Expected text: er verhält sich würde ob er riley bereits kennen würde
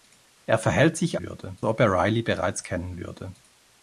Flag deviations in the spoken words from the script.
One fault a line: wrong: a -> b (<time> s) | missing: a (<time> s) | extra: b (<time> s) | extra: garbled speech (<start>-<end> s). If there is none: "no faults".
no faults